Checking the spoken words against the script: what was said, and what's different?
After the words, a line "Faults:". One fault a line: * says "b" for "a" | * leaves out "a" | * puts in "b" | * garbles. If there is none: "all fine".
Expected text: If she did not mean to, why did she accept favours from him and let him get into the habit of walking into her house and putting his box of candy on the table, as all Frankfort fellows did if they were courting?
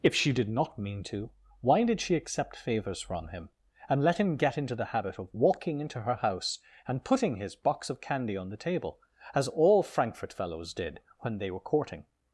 If she did not mean to, why did she accept favours from him and let him get into the habit of walking into her house and putting his box of candy on the table, as all Frankfort fellows did when they were courting?
Faults:
* says "when" for "if"